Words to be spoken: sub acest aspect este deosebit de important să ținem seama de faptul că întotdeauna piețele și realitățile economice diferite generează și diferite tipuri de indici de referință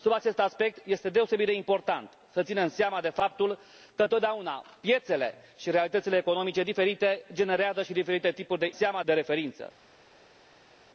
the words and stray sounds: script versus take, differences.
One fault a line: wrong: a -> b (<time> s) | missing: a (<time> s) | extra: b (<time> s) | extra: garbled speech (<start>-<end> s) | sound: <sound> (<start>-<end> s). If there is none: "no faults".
wrong: indici -> seama (8.7 s)